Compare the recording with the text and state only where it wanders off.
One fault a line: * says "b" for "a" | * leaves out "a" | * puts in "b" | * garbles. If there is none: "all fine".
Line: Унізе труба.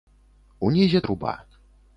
all fine